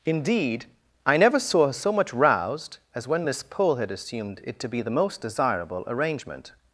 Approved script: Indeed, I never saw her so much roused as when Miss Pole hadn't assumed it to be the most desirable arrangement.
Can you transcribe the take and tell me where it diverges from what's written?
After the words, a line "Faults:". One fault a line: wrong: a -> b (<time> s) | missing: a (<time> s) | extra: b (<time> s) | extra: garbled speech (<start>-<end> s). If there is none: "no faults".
Indeed, I never saw her so much roused as when Miss Pole had assumed it to be the most desirable arrangement.
Faults:
wrong: hadn't -> had (3.8 s)